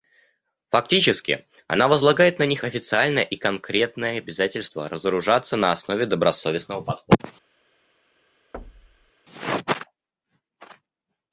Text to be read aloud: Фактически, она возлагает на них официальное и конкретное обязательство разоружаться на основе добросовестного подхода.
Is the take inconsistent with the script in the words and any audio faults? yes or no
yes